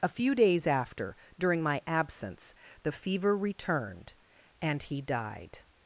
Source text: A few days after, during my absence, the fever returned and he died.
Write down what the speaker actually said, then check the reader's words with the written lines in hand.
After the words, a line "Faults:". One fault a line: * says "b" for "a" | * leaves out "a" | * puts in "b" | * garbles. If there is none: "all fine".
A few days after, during my absence, the fever returned and he died.
Faults:
all fine